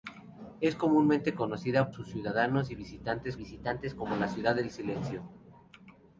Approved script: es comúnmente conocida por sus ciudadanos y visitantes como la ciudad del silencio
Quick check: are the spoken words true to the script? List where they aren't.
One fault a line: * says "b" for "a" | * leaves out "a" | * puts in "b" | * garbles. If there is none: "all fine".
* leaves out "por"
* puts in "visitantes"